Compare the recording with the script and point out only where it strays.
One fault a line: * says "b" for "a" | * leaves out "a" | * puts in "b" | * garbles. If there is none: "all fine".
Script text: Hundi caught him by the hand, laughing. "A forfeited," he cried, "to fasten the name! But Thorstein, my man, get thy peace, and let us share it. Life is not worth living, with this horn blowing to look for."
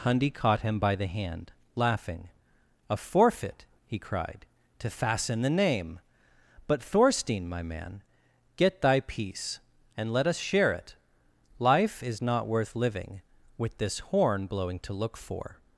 * says "forfeit" for "forfeited"